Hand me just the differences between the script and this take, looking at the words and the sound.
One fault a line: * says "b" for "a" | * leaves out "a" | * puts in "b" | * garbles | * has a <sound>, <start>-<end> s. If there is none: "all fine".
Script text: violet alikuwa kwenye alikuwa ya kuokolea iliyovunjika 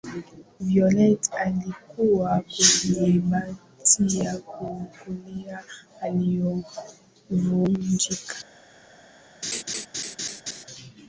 * says "boti" for "alikuwa"
* has a laugh, 9.4-10.6 s